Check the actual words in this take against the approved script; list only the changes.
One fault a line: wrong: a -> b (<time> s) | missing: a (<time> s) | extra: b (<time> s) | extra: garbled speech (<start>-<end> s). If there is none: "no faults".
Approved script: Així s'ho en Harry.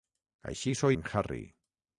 no faults